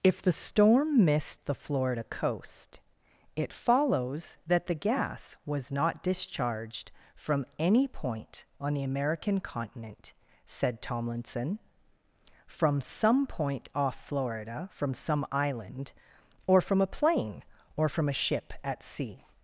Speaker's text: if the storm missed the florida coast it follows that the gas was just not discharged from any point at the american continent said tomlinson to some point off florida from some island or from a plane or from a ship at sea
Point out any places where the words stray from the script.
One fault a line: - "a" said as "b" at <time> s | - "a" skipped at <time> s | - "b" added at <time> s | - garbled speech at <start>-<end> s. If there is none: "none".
- "just" skipped at 5.7 s
- "at" said as "on" at 8.6 s
- "to" said as "from" at 12.4 s